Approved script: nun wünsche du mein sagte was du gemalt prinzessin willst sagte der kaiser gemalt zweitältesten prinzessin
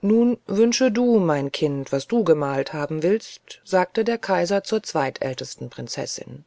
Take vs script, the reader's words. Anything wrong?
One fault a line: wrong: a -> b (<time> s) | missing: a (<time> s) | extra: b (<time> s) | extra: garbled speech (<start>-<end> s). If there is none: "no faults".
wrong: sagte -> kind (1.5 s)
wrong: prinzessin -> haben (2.7 s)
wrong: gemalt -> zur (4.6 s)